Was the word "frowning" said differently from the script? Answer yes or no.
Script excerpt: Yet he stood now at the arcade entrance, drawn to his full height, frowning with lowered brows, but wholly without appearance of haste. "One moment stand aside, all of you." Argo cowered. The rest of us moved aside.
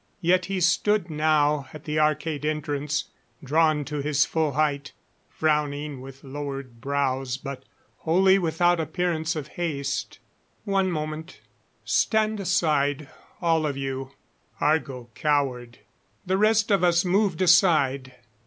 no